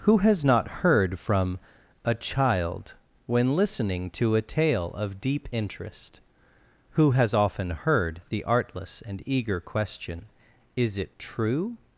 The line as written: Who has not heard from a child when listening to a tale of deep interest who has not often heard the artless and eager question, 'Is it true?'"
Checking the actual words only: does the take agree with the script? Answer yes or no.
no